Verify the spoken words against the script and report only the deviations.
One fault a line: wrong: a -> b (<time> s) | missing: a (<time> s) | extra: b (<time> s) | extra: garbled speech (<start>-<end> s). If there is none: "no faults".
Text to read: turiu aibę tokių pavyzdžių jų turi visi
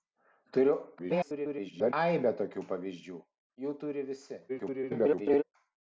extra: garbled speech (1.0-1.9 s)
extra: garbled speech (4.5-5.4 s)